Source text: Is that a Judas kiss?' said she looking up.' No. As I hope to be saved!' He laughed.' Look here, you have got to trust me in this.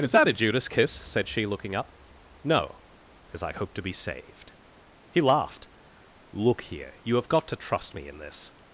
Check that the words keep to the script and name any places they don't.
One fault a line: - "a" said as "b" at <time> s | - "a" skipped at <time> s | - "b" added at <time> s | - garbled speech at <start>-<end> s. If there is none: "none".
none